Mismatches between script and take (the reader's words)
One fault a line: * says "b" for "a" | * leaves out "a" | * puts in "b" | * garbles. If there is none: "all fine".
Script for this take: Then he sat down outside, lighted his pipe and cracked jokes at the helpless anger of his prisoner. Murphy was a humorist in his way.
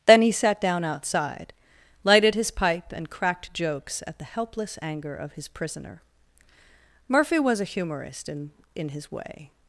* puts in "in"